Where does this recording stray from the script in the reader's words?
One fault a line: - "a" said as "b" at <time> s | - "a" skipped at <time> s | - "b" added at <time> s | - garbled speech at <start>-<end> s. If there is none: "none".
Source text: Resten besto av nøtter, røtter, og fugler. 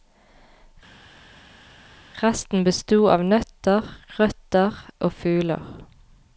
none